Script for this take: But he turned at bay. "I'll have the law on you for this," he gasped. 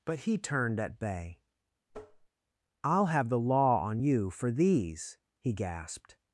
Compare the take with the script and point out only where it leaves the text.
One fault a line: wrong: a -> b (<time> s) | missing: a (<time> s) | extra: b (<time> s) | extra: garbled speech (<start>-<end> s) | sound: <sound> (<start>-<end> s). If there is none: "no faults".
sound: tap (1.9-2.3 s)
wrong: this -> these (4.5 s)